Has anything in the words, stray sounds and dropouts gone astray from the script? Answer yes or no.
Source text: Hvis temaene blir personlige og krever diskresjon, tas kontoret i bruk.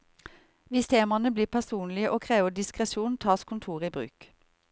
no